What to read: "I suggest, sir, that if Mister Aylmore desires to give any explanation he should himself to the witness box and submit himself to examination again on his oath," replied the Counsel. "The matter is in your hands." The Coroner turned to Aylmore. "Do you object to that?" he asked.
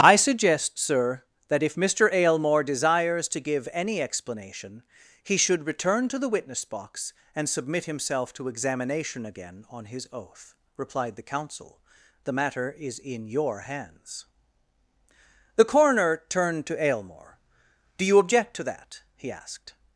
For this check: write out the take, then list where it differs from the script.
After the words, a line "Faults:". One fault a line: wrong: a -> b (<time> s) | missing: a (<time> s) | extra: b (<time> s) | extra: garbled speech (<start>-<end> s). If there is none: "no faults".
"I suggest, sir, that if Mister Aylmore desires to give any explanation he should return to the witness box and submit himself to examination again on his oath," replied the Counsel. "The matter is in your hands." The Coroner turned to Aylmore. "Do you object to that?" he asked.
Faults:
wrong: himself -> return (5.7 s)